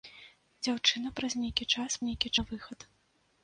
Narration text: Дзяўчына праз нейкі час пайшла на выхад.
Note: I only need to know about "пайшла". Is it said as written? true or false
false